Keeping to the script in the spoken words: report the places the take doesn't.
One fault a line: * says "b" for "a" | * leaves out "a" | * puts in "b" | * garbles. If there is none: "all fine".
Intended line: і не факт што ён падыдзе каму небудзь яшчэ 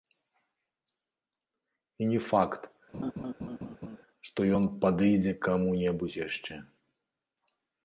all fine